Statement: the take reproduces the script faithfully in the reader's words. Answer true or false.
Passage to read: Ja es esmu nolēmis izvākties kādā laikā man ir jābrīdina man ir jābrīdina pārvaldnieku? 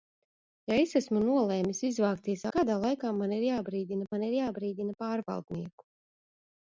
true